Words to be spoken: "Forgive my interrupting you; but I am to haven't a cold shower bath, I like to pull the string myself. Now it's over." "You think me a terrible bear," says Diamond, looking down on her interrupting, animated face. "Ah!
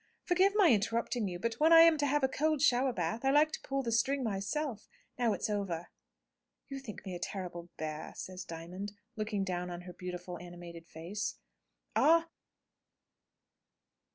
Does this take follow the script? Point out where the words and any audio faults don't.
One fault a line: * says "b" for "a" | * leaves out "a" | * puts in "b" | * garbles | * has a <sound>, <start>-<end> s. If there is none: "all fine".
* puts in "when"
* says "have" for "haven't"
* says "beautiful" for "interrupting"